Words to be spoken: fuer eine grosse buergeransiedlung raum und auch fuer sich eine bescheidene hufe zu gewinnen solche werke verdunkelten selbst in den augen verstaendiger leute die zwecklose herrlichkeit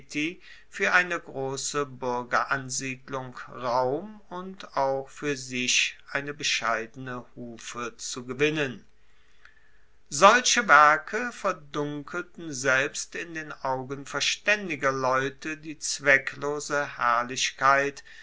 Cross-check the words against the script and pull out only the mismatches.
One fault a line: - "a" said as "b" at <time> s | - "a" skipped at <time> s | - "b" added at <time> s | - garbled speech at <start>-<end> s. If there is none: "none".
none